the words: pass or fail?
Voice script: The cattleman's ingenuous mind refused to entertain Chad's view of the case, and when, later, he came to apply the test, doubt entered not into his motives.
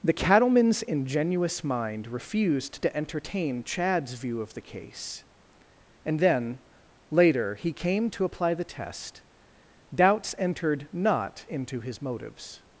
fail